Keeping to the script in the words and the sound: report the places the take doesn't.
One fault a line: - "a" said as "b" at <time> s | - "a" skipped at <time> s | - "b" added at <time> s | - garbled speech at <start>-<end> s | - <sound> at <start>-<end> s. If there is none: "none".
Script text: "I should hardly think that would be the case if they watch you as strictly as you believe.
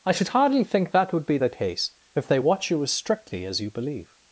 none